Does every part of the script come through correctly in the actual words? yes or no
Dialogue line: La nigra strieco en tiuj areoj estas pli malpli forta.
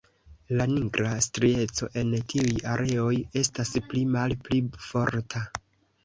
yes